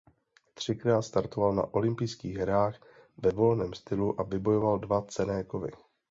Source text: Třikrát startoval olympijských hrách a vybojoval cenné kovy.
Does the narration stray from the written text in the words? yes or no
yes